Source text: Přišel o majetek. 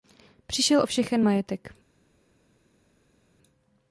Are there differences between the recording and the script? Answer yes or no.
yes